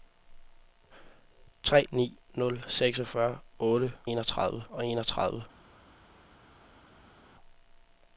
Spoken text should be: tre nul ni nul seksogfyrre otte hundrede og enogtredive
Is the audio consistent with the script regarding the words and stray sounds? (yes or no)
no